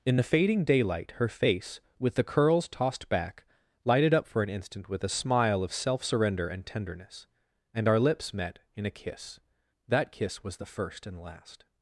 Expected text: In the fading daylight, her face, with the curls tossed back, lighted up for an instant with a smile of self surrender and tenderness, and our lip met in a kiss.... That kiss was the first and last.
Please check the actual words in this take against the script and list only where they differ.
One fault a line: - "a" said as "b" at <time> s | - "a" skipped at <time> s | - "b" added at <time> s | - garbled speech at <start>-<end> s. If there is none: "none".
- "lip" said as "lips" at 8.0 s